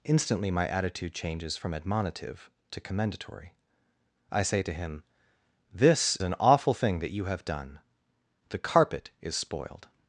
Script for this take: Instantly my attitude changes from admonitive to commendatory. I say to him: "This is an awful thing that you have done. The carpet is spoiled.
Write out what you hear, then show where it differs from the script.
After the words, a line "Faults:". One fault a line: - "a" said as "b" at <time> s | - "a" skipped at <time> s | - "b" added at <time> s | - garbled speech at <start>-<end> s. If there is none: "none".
Instantly my attitude changes from admonitive to commendatory. I say to him: "This an awful thing that you have done. The carpet is spoiled.
Faults:
- "is" skipped at 6.2 s